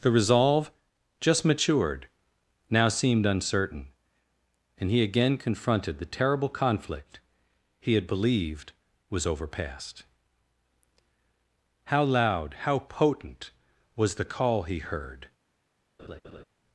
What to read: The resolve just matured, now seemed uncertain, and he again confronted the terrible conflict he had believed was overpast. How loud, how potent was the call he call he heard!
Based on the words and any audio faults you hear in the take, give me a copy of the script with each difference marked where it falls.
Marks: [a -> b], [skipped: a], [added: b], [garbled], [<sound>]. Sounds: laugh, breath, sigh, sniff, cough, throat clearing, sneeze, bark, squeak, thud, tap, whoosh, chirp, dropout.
The resolve just matured, now seemed uncertain, and he again confronted the terrible conflict he had believed was overpast. How loud, how potent was the call he [skipped: call he] heard! [laugh]